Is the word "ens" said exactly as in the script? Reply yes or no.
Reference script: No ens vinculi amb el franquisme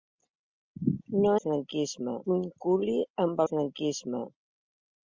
no